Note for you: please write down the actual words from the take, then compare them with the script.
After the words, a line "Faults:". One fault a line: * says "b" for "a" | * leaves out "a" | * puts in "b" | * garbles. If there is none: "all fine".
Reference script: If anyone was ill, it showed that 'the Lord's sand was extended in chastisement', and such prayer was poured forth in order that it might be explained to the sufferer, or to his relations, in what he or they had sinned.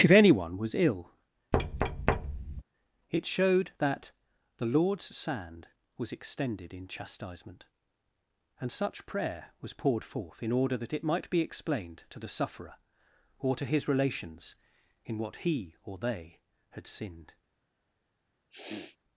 If anyone was ill, it showed that 'the Lord's sand was extended in chastisement', and such prayer was poured forth in order that it might be explained to the sufferer, or to his relations, in what he or they had sinned.
Faults:
all fine